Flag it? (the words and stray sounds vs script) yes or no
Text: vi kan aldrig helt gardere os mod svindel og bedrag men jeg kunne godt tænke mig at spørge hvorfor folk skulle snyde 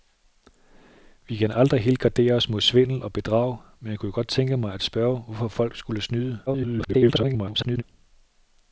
yes